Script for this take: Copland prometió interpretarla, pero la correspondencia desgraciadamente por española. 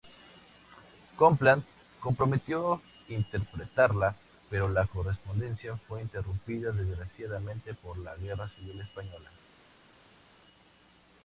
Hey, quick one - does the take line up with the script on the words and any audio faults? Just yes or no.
no